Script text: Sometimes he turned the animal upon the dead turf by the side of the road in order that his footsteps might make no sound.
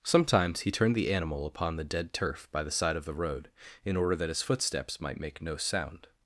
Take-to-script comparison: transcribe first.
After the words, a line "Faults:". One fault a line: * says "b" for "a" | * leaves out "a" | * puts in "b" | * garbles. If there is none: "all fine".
Sometimes he turned the animal upon the dead turf by the side of the road in order that his footsteps might make no sound.
Faults:
all fine